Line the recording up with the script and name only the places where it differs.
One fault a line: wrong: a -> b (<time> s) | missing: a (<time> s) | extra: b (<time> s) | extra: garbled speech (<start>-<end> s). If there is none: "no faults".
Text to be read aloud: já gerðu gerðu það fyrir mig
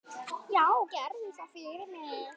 missing: gerðu (1.3 s)